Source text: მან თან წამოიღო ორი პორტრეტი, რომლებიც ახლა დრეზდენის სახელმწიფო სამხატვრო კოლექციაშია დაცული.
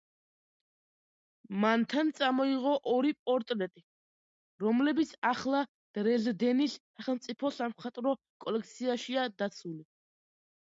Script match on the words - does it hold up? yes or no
yes